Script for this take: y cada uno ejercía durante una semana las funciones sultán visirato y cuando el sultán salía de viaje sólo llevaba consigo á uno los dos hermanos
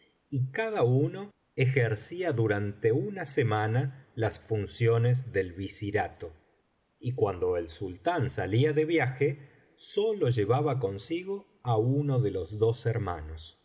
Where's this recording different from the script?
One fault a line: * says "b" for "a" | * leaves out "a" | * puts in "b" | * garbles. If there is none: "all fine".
* says "del" for "sultán"
* puts in "de"